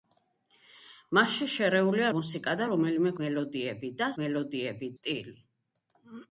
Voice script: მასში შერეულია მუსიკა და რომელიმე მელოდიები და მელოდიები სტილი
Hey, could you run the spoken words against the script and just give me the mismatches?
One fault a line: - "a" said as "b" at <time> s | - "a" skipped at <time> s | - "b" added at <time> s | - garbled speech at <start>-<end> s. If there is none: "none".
none